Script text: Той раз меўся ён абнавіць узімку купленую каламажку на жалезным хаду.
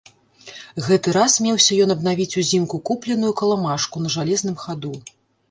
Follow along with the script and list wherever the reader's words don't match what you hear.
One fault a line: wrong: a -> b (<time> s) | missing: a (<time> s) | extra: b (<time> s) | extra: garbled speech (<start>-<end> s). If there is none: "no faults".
wrong: Той -> Гэты (0.8 s)